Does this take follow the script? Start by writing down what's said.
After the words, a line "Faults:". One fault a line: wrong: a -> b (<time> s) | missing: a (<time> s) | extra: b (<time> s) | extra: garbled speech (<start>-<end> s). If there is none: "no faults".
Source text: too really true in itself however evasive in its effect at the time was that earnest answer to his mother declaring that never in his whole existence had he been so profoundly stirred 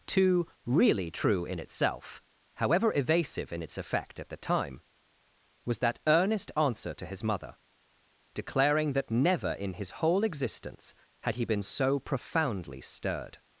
too really true in itself however evasive in its effect at the time was that earnest answer to his mother declaring that never in his whole existence had he been so profoundly stirred
Faults:
no faults